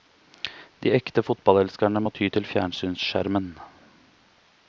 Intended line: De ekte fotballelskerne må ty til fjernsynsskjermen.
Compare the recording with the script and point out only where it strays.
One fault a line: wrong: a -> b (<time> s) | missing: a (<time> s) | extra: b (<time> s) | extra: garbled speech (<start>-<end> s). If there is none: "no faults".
no faults